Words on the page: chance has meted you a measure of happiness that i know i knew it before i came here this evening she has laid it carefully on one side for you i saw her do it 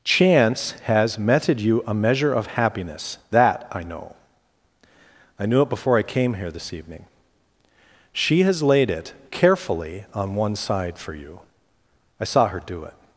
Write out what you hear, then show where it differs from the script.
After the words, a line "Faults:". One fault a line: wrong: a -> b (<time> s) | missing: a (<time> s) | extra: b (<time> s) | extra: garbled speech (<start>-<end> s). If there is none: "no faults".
chance has meted you a measure of happiness that i know i knew it before i came here this evening she has laid it carefully on one side for you i saw her do it
Faults:
no faults